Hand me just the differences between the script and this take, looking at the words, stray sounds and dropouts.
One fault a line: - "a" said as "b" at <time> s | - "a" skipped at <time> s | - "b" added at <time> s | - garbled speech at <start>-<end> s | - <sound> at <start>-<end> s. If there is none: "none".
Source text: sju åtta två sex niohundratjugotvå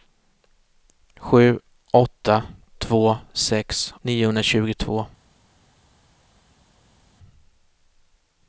none